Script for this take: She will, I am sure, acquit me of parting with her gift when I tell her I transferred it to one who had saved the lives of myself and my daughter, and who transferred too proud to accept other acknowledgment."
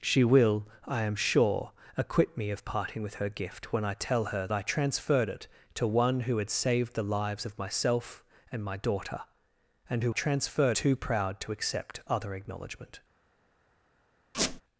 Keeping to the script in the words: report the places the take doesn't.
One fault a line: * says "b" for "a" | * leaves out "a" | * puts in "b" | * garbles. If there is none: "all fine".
all fine